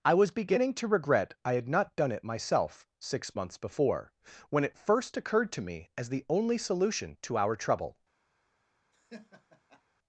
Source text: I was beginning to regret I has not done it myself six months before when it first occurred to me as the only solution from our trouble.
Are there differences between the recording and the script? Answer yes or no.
yes